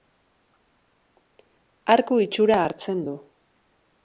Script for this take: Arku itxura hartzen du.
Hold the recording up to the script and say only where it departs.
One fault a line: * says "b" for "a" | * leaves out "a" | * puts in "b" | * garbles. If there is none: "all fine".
all fine